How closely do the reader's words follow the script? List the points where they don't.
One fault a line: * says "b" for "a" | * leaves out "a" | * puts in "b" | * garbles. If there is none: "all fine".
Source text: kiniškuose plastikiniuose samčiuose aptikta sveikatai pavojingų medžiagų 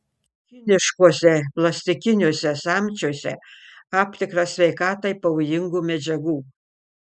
all fine